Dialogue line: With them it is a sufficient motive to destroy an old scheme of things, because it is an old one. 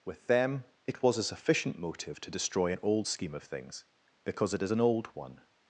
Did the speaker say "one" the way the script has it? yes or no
yes